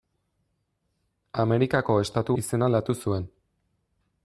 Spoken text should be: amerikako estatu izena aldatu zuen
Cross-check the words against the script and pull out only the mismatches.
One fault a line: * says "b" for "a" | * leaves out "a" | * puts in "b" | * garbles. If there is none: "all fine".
all fine